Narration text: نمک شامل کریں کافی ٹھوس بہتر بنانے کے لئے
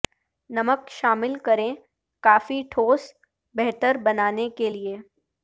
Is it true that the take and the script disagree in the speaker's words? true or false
false